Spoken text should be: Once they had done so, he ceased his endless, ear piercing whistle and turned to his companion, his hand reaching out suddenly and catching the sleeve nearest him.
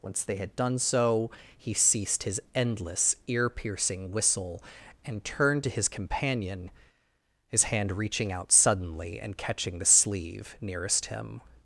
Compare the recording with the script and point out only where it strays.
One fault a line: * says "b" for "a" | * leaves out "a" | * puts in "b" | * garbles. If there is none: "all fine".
all fine